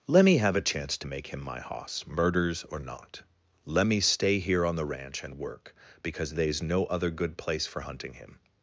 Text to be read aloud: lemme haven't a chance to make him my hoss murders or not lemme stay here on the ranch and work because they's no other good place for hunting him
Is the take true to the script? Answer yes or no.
no